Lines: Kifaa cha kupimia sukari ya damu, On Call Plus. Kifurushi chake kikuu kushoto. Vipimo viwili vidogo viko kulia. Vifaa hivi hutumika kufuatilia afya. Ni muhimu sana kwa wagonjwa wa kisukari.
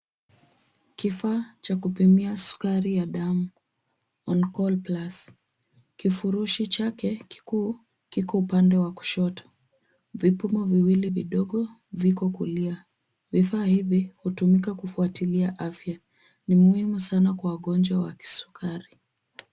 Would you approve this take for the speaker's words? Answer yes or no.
no